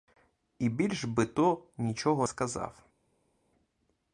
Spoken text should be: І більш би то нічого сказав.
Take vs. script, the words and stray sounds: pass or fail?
pass